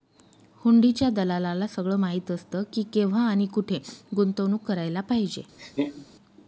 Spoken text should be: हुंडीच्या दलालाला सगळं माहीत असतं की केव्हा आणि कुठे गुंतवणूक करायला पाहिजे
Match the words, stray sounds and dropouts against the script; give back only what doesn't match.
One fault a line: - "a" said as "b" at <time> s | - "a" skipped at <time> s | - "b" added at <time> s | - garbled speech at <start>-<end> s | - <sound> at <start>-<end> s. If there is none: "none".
- laugh at 5.6-6.1 s